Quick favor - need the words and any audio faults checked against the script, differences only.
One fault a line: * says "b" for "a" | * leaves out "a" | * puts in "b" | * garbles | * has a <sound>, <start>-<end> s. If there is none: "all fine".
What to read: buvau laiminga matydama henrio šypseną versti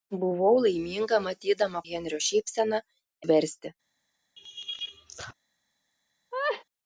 * has a laugh, 4.4-5.3 s
* has a laugh, 6.3-6.6 s